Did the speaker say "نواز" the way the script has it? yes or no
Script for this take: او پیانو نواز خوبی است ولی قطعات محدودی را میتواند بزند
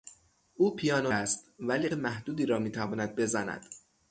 no